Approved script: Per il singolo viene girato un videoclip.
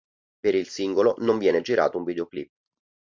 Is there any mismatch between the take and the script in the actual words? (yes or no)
yes